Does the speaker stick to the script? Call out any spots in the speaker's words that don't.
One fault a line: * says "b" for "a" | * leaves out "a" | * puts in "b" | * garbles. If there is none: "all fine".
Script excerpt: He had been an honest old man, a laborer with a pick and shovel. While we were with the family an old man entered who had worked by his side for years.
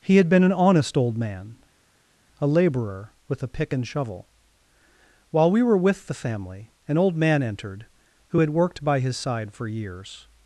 all fine